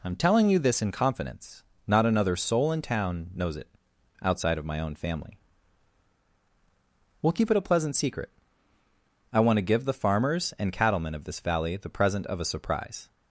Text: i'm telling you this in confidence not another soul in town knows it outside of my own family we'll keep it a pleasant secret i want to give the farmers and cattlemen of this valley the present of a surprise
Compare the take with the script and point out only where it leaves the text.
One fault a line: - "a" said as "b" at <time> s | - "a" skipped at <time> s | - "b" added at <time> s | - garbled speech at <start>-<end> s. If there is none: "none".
none